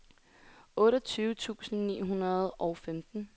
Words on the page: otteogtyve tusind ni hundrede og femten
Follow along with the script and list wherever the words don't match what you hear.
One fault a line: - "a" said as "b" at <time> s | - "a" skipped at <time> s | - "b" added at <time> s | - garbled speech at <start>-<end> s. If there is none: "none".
none